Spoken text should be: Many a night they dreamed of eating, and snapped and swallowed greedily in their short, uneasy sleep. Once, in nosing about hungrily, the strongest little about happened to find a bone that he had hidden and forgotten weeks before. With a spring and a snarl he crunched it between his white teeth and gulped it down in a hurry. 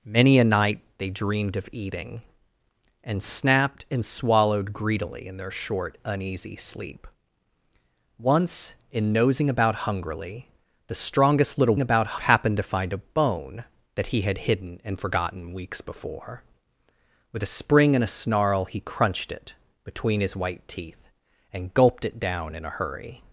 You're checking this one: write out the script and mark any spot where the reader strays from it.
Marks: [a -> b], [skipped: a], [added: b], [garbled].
Many a night they dreamed of eating, and snapped and swallowed greedily in their short, uneasy sleep. Once, in nosing about hungrily, the strongest little about happened to find a bone that he had hidden and forgotten weeks before. With a spring and a snarl he crunched it between his white teeth and gulped it down in a hurry.